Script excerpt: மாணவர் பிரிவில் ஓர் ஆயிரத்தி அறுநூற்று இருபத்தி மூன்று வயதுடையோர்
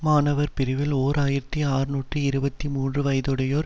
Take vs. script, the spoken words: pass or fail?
pass